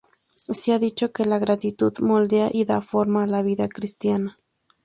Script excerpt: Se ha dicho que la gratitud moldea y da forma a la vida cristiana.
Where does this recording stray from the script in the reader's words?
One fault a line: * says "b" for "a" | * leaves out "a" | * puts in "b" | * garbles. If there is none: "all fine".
all fine